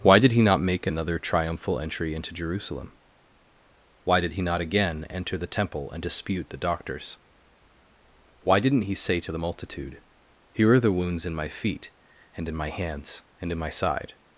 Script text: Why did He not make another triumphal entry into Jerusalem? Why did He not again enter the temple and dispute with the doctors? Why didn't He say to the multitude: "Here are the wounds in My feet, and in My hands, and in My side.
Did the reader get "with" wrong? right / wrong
wrong